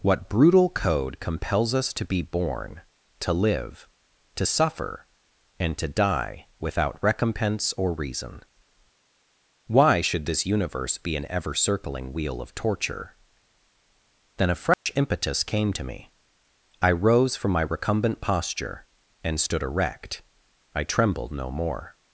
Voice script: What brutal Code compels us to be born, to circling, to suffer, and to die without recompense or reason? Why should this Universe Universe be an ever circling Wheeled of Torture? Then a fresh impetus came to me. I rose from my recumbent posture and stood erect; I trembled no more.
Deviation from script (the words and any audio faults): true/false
true